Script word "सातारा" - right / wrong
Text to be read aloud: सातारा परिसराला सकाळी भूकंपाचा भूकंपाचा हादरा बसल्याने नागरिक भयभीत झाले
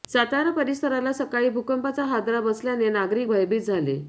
right